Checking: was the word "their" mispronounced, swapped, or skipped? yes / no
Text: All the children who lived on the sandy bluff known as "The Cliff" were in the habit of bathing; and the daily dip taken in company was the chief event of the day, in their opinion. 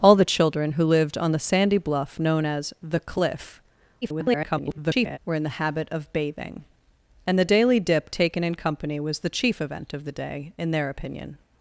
no